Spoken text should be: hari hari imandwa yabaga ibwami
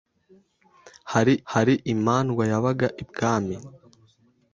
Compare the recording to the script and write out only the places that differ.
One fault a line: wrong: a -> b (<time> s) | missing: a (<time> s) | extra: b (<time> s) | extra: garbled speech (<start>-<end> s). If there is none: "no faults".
no faults